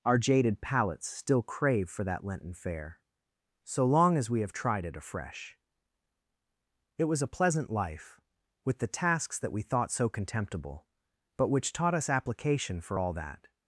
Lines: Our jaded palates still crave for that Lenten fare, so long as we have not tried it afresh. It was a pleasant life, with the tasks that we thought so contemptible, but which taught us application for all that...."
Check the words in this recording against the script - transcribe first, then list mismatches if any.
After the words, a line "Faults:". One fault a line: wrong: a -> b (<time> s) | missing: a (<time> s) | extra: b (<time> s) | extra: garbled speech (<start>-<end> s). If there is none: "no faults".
Our jaded palates still crave for that Lenten fare, so long as we have tried it afresh. It was a pleasant life, with the tasks that we thought so contemptible, but which taught us application for all that...."
Faults:
missing: not (4.5 s)